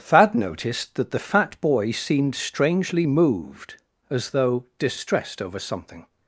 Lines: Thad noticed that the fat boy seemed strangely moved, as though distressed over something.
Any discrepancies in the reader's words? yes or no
no